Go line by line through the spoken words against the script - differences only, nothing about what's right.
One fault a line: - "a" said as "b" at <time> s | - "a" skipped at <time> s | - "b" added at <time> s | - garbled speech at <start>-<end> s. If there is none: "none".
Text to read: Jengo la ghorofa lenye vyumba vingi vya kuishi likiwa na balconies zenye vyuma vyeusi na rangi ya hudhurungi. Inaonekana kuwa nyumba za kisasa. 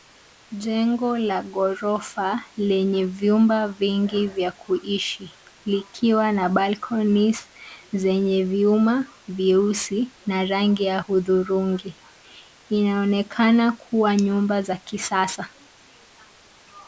none